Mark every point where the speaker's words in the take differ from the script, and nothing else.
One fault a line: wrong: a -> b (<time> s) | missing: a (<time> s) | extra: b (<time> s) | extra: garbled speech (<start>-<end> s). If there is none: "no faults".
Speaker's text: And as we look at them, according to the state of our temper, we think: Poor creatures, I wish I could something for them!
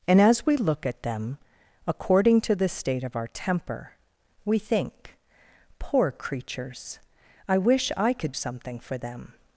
no faults